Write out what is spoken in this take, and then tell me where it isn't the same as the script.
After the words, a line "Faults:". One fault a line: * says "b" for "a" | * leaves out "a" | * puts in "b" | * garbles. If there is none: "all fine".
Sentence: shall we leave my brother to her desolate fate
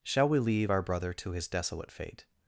shall we leave our brother to his desolate fate
Faults:
* says "our" for "my"
* says "his" for "her"